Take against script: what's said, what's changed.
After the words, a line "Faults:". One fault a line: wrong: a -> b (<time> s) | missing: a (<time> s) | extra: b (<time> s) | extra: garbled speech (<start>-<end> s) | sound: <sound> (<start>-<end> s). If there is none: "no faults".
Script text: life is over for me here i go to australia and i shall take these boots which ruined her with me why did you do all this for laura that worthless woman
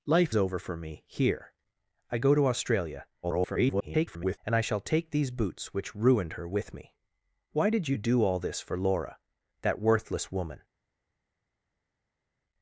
life over for me here i go to australia [garbled] and i shall take these boots which ruined her with me why did you do all this for laura that worthless woman
Faults:
missing: is (0.3 s)
extra: garbled speech (3.2-4.4 s)